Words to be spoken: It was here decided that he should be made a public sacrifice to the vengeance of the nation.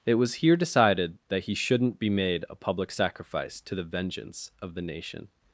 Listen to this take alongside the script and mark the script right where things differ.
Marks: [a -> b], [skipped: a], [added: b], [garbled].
It was here decided that he [should -> shouldn't] be made a public sacrifice to the vengeance of the nation.